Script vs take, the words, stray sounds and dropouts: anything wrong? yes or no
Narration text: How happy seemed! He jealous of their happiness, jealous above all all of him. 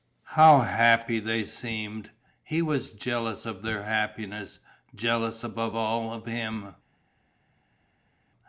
yes